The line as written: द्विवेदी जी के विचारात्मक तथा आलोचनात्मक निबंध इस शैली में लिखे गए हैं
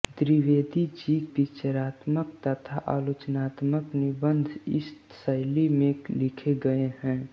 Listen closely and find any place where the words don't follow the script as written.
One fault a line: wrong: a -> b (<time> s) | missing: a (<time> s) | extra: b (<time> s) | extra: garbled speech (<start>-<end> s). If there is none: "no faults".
missing: के (1.2 s)